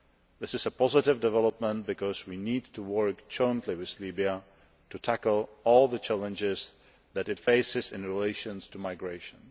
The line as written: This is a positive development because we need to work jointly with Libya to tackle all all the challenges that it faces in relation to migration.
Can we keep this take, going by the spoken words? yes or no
no